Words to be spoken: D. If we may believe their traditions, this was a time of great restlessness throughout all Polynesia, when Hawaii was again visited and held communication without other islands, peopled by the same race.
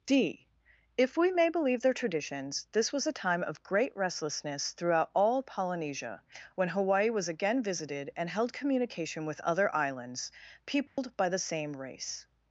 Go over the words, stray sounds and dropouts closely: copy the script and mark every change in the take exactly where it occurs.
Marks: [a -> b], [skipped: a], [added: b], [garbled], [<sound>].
D. If we may believe their traditions, this was a time of great restlessness throughout all Polynesia, when Hawaii was again visited and held communication [without -> with] other islands, peopled [dropout] by the same race.